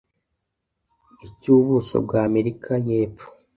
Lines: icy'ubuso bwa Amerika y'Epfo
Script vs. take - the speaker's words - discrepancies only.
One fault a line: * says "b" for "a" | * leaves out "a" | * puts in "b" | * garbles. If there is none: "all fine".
all fine